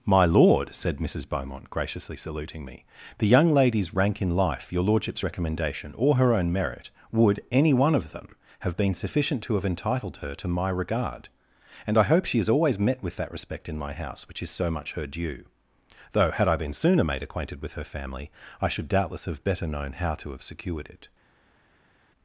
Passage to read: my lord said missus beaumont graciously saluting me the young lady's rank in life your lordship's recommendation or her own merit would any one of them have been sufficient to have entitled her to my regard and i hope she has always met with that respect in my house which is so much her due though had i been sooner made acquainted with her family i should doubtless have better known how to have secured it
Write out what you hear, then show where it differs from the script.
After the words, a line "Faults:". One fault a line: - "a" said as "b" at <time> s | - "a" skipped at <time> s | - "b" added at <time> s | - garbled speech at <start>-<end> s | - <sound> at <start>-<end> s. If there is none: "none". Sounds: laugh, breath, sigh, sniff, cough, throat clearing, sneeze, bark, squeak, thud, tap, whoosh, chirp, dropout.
my lord said missus beaumont graciously saluting me the young lady's rank in life your lordship's recommendation or her own merit would any one of them have been sufficient to have entitled her to my regard and i hope she has always met with that respect in my house which is so much her due though had i been sooner made acquainted with her family i should doubtless have better known how to have secured it
Faults:
none